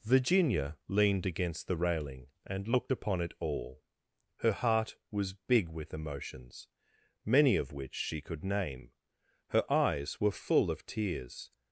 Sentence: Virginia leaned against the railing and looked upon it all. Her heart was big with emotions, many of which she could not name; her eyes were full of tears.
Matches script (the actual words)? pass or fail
fail